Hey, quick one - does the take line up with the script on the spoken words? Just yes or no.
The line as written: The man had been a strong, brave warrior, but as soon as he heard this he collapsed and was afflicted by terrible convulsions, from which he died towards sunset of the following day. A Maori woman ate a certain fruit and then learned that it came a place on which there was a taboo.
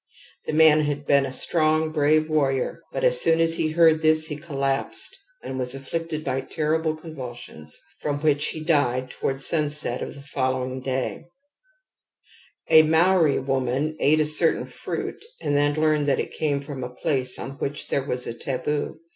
no